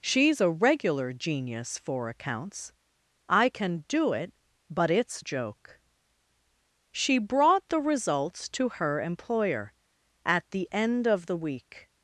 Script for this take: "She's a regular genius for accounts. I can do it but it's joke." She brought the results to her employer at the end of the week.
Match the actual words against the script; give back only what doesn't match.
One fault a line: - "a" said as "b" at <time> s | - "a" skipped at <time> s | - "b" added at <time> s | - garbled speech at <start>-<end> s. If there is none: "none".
none